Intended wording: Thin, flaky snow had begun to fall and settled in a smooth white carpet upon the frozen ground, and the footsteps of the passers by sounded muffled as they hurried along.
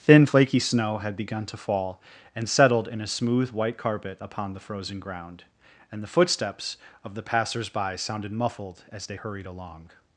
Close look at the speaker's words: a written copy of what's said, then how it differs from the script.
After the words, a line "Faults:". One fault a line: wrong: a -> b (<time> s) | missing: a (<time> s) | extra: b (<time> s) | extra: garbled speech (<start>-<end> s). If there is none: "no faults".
Thin, flaky snow had begun to fall and settled in a smooth white carpet upon the frozen ground, and the footsteps of the passers by sounded muffled as they hurried along.
Faults:
no faults